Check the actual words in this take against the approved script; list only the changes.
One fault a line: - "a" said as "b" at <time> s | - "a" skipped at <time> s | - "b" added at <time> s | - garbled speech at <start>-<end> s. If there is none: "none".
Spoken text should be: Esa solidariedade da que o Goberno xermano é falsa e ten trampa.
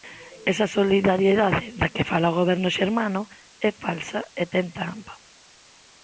- "fala" added at 2.1 s